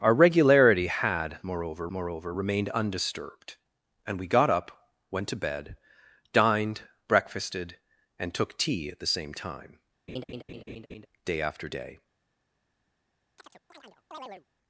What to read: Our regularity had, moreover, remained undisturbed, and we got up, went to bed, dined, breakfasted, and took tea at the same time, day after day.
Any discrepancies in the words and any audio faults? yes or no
yes